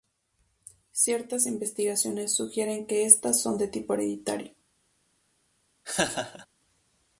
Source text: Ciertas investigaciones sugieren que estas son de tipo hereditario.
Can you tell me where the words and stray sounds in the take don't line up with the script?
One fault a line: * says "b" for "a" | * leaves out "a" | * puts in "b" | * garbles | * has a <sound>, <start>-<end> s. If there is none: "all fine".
* has a laugh, 5.8-6.5 s